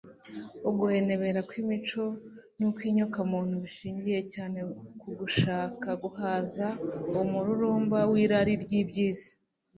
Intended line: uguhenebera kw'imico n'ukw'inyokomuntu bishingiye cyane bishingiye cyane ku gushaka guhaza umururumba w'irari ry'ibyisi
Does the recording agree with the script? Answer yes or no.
no